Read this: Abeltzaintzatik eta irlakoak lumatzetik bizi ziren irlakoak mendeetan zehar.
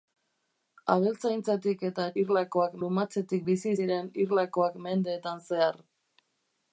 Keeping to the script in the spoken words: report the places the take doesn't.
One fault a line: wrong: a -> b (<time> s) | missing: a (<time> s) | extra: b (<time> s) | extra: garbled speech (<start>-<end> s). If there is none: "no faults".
no faults